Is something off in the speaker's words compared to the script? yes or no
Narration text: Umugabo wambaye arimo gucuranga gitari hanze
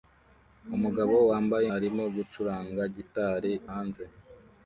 no